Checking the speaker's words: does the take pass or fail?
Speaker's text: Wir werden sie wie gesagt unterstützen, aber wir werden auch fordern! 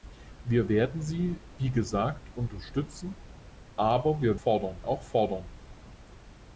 fail